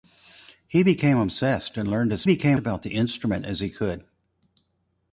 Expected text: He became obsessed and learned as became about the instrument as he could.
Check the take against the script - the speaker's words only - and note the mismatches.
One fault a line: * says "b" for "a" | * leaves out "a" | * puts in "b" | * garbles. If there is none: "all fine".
all fine